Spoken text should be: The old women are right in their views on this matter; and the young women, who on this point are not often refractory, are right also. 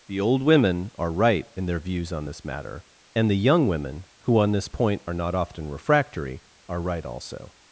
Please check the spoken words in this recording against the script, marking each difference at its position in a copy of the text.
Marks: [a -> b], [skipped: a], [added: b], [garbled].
The old women are right in their views on this matter; and the young women, who on this point are not often refractory, are right also.